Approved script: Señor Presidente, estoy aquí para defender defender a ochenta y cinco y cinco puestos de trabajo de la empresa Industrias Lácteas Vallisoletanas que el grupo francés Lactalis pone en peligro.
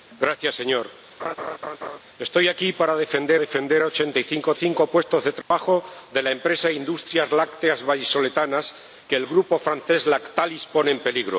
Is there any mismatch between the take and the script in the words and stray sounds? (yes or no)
yes